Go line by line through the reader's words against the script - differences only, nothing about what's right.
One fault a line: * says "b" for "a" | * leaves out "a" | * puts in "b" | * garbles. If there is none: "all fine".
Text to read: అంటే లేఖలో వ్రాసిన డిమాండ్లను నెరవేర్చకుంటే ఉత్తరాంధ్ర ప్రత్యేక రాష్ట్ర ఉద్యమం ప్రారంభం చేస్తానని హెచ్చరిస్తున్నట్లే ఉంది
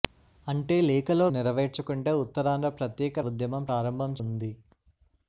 * leaves out "వ్రాసిన డిమాండ్లను"
* leaves out "రాష్ట్ర"
* leaves out "చేస్తానని హెచ్చరిస్తున్నట్లే"